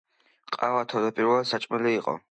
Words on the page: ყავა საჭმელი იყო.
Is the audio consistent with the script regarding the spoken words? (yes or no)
no